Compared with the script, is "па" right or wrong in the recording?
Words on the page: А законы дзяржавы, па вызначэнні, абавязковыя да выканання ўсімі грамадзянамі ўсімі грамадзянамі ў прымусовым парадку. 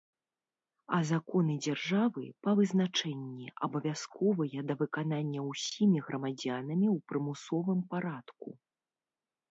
right